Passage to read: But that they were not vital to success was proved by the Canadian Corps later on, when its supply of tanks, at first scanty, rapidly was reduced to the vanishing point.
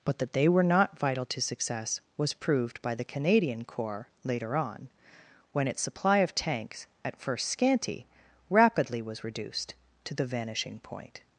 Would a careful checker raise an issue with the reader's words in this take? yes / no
no